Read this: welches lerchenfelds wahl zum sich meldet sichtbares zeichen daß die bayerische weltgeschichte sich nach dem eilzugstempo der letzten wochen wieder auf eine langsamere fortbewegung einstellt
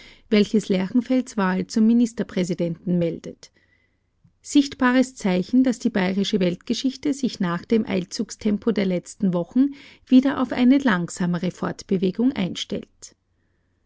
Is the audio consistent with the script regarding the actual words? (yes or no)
no